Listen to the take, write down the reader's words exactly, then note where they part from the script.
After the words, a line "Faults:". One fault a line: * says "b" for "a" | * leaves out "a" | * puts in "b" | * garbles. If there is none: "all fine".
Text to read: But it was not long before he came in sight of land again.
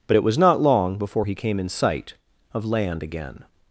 But it was not long before he came in sight of land again.
Faults:
all fine